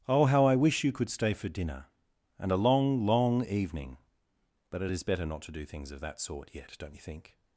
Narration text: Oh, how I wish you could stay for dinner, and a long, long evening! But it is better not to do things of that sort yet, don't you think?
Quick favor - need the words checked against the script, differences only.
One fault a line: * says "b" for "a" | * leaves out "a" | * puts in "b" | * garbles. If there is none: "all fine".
all fine